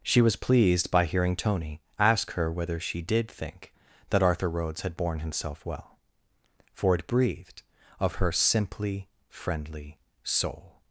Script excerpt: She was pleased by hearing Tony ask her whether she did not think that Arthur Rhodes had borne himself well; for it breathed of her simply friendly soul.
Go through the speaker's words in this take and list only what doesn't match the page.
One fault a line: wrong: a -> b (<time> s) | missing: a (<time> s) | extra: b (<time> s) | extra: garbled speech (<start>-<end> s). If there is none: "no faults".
missing: not (3.3 s)